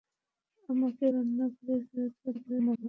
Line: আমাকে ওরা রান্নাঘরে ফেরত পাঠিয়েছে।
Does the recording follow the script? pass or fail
fail